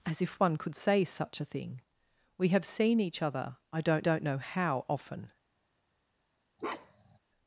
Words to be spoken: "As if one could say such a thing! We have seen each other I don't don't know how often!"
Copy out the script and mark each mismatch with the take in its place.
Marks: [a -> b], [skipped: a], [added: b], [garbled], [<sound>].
"As if one could say such a thing! We have seen each other I don't don't know how often!" [bark]